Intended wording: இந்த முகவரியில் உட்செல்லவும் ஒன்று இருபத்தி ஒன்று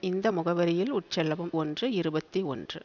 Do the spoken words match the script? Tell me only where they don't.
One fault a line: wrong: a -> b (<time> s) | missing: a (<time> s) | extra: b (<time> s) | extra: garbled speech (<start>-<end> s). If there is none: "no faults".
no faults